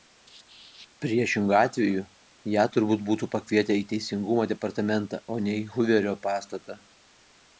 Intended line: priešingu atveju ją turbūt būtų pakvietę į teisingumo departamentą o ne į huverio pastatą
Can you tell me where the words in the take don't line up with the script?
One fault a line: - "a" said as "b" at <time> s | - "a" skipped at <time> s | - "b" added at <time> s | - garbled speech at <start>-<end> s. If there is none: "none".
none